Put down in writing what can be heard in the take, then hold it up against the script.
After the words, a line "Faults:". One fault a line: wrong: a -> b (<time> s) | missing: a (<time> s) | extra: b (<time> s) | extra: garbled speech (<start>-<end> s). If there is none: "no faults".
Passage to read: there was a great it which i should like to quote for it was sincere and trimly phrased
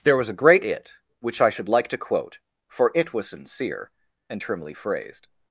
there was a great it which i should like to quote for it was sincere and trimly phrased
Faults:
no faults